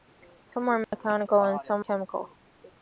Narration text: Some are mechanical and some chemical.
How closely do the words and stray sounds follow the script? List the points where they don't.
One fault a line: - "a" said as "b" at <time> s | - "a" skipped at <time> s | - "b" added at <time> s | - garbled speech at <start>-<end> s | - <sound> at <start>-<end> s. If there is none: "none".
- dropout at 0.8-0.9 s